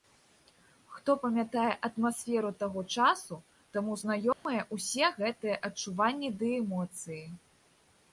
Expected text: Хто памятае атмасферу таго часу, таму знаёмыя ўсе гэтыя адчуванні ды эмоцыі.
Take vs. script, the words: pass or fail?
pass